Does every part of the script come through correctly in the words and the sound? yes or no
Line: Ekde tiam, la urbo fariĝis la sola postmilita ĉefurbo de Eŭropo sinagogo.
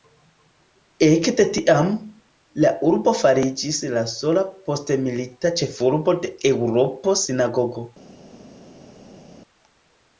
yes